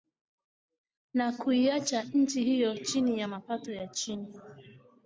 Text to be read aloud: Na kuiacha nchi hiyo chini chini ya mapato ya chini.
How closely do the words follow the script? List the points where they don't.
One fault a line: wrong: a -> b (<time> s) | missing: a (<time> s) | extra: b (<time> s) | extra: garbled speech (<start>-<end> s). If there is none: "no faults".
missing: chini (3.2 s)